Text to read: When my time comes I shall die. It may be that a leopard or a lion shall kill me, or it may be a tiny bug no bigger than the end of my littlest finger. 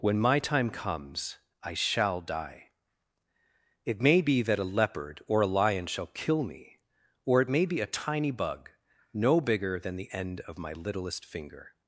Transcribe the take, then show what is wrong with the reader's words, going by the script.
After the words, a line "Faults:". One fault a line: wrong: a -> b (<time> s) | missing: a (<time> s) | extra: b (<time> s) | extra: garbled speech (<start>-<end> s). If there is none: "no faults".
When my time comes I shall die. It may be that a leopard or a lion shall kill me, or it may be a tiny bug no bigger than the end of my littlest finger.
Faults:
no faults